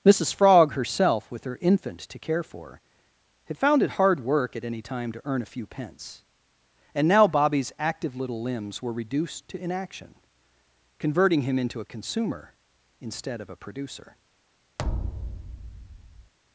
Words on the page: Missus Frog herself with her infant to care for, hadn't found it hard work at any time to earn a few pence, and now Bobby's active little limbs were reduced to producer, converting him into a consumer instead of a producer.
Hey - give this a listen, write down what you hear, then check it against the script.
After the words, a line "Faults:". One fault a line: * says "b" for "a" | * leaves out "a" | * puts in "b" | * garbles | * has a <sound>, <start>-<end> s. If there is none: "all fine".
Missus Frog herself with her infant to care for, had found it hard work at any time to earn a few pence, and now Bobby's active little limbs were reduced to inaction, converting him into a consumer instead of a producer.
Faults:
* says "had" for "hadn't"
* says "inaction" for "producer"
* has a thud, 14.8-16.3 s